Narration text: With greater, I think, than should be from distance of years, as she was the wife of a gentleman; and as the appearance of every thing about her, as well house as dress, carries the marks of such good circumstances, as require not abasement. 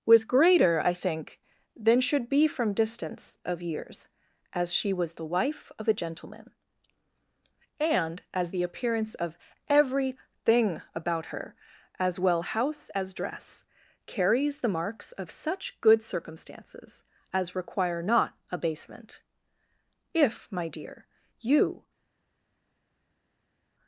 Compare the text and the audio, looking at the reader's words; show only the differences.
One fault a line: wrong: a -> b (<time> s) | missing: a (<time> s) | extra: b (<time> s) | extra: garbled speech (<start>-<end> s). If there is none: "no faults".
extra: If my dear you (20.1 s)